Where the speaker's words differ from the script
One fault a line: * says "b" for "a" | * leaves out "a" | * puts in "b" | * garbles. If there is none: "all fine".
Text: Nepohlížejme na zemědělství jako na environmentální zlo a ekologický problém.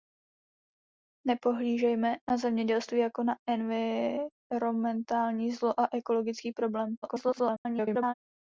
* garbles